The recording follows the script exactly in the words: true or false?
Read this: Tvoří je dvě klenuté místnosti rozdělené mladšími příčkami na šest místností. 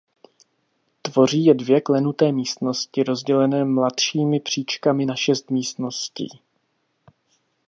true